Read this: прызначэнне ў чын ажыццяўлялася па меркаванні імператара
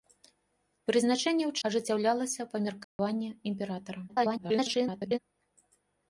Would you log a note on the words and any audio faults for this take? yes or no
yes